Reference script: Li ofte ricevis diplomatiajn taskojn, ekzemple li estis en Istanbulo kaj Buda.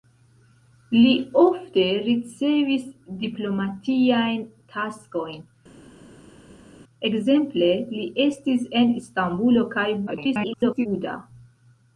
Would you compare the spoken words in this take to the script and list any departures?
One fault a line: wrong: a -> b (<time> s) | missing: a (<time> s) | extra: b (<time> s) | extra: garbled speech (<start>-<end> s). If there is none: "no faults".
extra: garbled speech (10.1-10.9 s)